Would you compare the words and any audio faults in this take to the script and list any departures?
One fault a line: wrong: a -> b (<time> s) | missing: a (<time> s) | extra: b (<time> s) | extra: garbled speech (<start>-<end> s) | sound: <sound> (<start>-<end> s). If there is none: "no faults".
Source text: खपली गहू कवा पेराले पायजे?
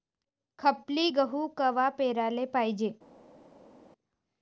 no faults